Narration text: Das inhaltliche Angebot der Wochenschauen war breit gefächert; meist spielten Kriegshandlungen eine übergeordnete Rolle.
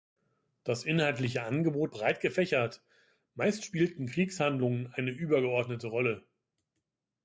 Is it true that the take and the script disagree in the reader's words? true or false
true